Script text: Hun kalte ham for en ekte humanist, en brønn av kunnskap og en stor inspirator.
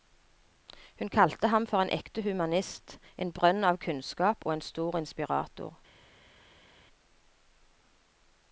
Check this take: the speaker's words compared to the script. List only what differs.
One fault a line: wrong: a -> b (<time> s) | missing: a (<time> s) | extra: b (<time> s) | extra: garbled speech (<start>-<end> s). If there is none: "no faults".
no faults